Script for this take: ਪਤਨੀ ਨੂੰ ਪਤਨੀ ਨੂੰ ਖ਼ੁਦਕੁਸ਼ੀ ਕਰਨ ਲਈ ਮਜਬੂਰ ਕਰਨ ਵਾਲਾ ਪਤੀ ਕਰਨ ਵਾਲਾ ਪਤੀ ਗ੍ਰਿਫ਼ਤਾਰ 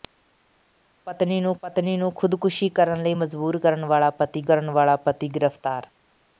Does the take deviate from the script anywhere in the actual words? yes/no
no